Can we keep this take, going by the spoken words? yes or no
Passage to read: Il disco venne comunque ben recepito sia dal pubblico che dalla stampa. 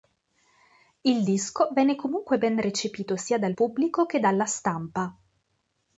yes